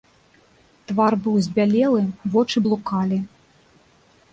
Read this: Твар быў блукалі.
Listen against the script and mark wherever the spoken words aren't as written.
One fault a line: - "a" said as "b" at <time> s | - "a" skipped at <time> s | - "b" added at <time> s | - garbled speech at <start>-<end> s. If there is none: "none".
- "збялелы вочы" added at 1.5 s